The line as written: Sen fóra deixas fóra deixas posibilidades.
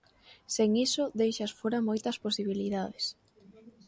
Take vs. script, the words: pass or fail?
fail